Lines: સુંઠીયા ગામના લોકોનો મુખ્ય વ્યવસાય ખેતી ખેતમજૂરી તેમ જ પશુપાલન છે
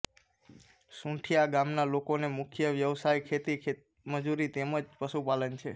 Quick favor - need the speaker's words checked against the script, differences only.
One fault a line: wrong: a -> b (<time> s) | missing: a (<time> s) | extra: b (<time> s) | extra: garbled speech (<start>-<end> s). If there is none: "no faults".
no faults